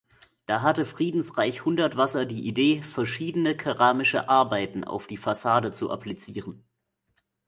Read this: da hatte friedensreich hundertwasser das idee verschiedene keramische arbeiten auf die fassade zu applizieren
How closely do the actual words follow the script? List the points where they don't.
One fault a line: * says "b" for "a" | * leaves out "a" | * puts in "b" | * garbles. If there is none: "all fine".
* says "die" for "das"